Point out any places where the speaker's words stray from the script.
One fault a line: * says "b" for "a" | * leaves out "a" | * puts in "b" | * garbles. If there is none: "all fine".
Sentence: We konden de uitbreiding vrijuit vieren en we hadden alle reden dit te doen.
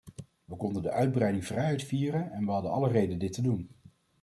all fine